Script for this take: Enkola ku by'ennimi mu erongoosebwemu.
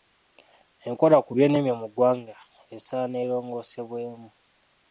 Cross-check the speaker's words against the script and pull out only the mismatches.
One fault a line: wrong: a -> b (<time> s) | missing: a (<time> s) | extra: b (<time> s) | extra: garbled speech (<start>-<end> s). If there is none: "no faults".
extra: ggwanga esaana (1.9 s)